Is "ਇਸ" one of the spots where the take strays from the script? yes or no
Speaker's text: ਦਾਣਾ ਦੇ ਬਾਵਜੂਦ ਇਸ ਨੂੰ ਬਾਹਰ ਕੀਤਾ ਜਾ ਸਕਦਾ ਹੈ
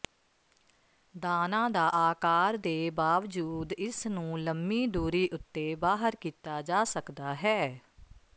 no